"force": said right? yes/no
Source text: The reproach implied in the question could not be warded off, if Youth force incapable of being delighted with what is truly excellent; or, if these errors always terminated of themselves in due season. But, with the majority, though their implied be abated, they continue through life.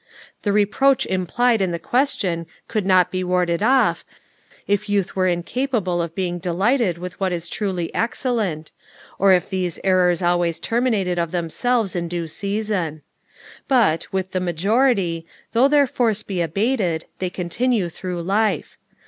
no